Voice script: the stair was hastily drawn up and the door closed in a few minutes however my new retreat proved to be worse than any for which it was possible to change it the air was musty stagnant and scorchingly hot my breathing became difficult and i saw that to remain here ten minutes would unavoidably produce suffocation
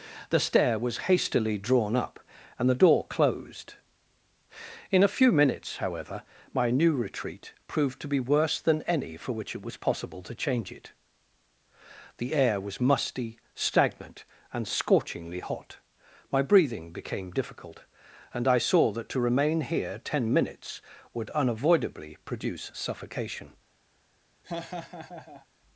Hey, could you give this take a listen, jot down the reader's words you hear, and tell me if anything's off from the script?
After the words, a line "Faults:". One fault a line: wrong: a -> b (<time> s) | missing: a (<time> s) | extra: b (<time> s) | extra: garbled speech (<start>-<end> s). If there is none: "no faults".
the stair was hastily drawn up and the door closed in a few minutes however my new retreat proved to be worse than any for which it was possible to change it the air was musty stagnant and scorchingly hot my breathing became difficult and i saw that to remain here ten minutes would unavoidably produce suffocation
Faults:
no faults